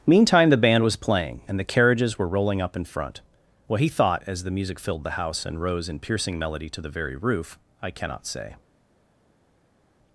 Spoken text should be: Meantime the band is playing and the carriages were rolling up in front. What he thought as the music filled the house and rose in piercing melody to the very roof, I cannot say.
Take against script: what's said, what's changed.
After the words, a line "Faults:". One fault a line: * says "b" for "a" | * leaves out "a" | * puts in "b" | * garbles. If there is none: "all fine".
Meantime the band was playing and the carriages were rolling up in front. What he thought as the music filled the house and rose in piercing melody to the very roof, I cannot say.
Faults:
* says "was" for "is"